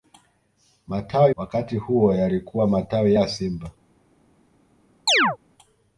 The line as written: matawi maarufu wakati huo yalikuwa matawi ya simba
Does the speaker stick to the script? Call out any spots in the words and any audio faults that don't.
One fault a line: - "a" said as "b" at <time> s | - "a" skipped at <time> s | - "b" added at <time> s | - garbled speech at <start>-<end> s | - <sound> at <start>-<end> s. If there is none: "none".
- "maarufu" skipped at 1.3 s
- chirp at 5.1-5.4 s